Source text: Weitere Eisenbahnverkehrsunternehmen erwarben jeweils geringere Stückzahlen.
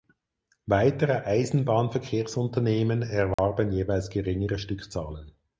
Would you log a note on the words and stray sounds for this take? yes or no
yes